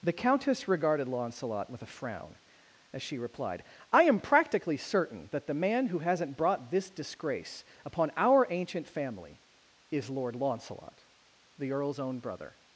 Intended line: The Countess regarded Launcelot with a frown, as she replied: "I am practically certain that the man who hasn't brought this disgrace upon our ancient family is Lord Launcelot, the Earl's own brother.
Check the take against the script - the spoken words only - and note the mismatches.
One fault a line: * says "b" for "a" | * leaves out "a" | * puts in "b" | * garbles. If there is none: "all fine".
all fine